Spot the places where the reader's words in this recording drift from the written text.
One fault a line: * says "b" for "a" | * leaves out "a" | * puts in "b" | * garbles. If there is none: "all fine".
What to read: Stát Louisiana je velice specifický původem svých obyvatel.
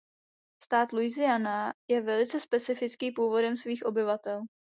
all fine